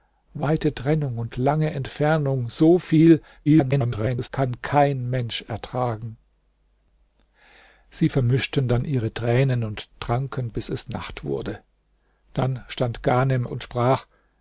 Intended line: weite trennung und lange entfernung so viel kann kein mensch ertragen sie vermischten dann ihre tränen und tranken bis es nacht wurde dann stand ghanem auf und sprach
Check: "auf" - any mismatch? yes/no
yes